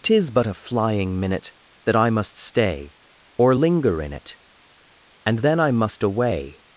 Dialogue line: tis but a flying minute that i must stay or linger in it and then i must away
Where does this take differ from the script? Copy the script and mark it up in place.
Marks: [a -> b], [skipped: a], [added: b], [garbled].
tis but a flying minute that i must stay or linger in it and then i must away